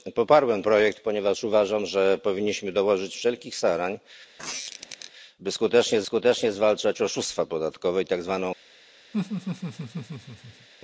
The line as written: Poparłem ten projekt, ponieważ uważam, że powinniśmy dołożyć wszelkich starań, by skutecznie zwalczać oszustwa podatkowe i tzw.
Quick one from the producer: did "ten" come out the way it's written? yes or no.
no